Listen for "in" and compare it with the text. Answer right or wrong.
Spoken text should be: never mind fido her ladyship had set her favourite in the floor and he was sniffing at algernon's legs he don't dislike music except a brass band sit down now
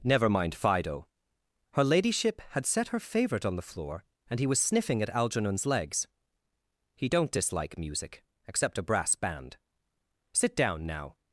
wrong